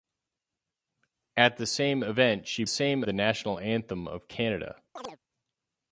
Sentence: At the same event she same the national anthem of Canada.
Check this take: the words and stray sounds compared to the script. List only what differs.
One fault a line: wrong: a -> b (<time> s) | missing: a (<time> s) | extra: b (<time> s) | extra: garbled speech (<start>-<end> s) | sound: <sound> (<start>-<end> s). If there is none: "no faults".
sound: chirp (5.0-5.2 s)